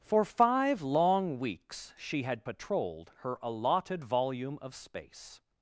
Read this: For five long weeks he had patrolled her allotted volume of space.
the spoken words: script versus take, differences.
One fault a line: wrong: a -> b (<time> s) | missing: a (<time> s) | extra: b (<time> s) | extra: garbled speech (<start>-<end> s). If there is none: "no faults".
wrong: he -> she (2.0 s)